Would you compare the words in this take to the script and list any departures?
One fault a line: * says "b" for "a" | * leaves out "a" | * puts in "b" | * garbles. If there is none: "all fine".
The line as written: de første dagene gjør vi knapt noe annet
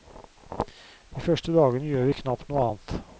all fine